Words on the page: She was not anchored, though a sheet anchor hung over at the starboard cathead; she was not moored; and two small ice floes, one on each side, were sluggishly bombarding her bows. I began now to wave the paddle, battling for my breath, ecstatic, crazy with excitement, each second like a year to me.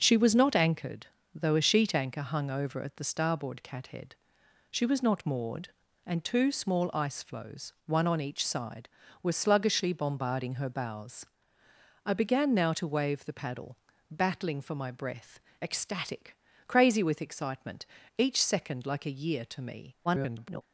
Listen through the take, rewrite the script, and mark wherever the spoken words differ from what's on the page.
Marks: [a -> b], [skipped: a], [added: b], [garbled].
She was not anchored, though a sheet anchor hung over at the starboard cathead; she was not moored; and two small ice floes, one on each side, were sluggishly bombarding her bows. I began now to wave the paddle, battling for my breath, ecstatic, crazy with excitement, each second like a year to me. [garbled]